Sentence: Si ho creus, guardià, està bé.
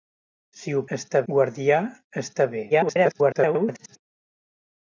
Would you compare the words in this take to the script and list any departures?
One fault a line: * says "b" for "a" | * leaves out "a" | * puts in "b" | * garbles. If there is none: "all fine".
* says "està" for "creus"
* garbles